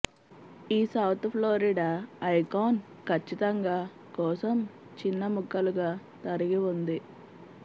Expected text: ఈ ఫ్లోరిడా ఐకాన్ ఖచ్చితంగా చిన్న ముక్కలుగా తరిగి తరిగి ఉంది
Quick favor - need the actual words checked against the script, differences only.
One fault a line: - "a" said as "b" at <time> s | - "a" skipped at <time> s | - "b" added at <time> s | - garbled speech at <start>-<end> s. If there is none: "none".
- "సౌత్" added at 0.9 s
- "కోసం" added at 4.2 s
- "తరిగి" skipped at 6.6 s